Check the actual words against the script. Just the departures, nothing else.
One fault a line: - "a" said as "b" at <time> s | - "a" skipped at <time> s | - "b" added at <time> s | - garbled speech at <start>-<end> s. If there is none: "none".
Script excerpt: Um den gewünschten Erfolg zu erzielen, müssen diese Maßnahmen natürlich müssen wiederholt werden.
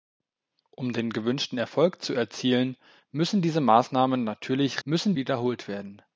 none